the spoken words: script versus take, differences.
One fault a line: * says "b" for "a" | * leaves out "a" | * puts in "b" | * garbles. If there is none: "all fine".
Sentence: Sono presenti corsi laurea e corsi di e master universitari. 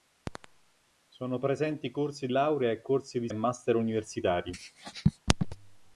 all fine